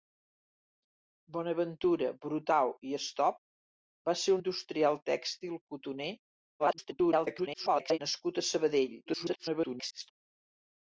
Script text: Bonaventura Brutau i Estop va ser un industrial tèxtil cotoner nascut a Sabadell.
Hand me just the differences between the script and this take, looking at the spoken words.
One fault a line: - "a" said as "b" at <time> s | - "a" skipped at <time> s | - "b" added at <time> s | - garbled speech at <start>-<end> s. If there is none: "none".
- "un" skipped at 4.3 s
- garbled speech at 6.6-8.0 s
- garbled speech at 9.1-10.1 s